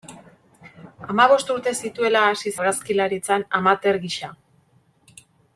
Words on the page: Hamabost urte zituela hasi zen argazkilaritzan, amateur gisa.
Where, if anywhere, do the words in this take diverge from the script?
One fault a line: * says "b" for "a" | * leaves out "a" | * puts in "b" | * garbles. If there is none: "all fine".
* leaves out "zen"